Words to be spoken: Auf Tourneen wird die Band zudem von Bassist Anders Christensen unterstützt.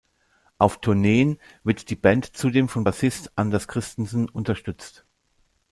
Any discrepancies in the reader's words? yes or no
no